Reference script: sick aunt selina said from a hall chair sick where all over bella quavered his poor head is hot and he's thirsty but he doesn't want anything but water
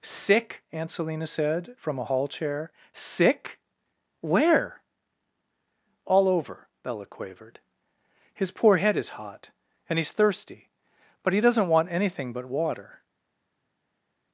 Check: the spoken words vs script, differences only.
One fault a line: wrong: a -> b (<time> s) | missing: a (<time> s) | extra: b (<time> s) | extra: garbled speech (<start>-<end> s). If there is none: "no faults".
no faults